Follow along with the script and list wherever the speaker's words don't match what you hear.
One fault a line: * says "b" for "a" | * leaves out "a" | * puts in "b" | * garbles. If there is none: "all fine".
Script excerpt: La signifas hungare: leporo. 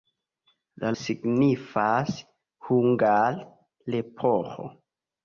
all fine